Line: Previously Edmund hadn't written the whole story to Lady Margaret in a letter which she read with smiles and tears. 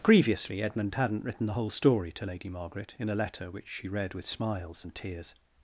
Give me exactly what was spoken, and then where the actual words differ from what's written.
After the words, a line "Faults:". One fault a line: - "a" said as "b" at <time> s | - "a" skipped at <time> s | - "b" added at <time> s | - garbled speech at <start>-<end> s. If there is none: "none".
Previously Edmund hadn't written the whole story to Lady Margaret in a letter which she read with smiles and tears.
Faults:
none